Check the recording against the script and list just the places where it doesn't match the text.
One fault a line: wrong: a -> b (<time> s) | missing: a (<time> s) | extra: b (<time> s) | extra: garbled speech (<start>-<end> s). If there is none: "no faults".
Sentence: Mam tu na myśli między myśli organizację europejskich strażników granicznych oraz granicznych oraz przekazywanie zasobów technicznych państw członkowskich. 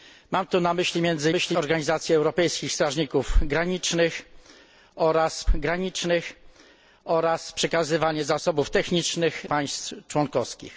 no faults